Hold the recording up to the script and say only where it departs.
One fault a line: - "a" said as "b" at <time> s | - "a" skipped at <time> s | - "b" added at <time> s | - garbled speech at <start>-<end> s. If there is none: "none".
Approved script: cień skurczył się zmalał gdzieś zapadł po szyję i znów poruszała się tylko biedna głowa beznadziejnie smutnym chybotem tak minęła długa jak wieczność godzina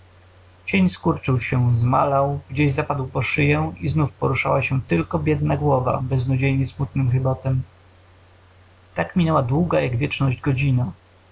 none